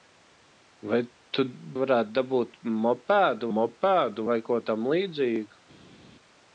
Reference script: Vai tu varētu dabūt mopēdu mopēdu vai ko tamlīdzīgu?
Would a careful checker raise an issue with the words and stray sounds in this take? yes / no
no